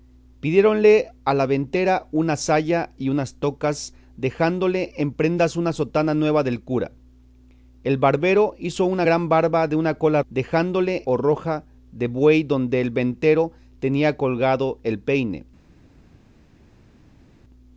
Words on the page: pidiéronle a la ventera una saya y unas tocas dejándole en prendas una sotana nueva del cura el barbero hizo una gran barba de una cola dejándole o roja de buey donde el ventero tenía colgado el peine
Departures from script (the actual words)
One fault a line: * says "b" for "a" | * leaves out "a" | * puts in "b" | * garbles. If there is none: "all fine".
all fine